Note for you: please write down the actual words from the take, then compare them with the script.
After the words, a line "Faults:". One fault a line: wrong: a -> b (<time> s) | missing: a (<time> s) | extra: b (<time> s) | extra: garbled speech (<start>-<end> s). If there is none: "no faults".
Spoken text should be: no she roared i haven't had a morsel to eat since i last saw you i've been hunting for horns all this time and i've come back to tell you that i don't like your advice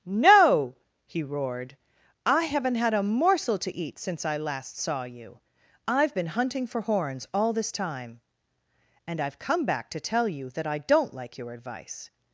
no he roared i haven't had a morsel to eat since i last saw you i've been hunting for horns all this time and i've come back to tell you that i don't like your advice
Faults:
wrong: she -> he (1.1 s)